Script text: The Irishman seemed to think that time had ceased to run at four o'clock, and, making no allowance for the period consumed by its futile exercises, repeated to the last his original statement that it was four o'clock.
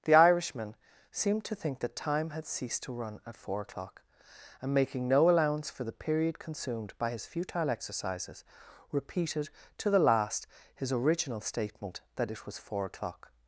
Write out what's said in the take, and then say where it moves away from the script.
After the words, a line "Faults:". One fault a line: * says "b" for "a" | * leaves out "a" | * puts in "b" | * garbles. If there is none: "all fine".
The Irishman seemed to think that time had ceased to run at four o'clock, and, making no allowance for the period consumed by his futile exercises, repeated to the last his original statement that it was four o'clock.
Faults:
* says "his" for "its"